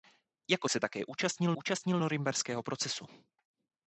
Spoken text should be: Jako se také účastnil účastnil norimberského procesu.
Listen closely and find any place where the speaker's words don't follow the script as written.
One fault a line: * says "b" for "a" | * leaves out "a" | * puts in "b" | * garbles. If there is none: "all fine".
all fine